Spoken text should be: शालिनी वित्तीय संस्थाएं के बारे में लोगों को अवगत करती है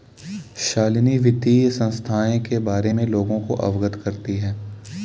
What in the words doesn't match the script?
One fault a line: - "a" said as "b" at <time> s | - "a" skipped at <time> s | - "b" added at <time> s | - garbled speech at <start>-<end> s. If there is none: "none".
none